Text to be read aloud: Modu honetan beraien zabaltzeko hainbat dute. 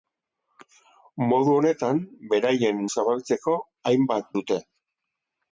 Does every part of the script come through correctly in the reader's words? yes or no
yes